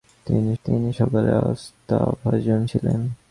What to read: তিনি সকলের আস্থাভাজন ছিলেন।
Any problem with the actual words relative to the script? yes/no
yes